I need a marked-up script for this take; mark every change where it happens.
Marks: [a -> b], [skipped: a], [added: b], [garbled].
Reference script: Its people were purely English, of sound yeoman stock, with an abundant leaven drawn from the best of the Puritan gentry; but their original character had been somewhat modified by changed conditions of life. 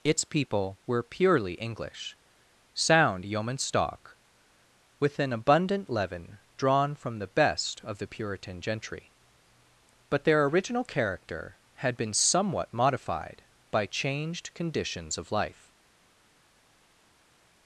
Its people were purely English, [skipped: of] sound yeoman stock, with an abundant leaven drawn from the best of the Puritan gentry; but their original character had been somewhat modified by changed conditions of life.